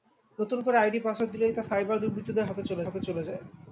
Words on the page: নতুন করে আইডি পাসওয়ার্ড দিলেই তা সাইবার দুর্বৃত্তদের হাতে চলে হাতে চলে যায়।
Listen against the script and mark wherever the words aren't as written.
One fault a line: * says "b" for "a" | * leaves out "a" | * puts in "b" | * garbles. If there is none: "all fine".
all fine